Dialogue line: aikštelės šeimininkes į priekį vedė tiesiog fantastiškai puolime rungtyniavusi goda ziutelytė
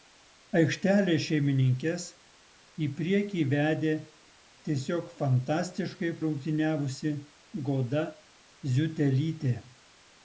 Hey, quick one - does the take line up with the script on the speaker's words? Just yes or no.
no